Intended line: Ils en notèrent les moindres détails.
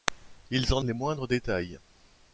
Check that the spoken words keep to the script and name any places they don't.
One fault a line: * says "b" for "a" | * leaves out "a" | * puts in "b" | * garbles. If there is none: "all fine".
* leaves out "notèrent"